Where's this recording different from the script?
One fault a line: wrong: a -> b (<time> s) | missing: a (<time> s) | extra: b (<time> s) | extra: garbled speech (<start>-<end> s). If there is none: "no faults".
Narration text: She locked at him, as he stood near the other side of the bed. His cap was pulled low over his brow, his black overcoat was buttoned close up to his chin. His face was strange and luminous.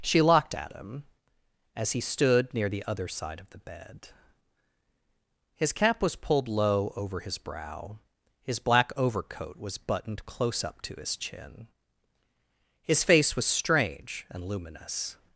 no faults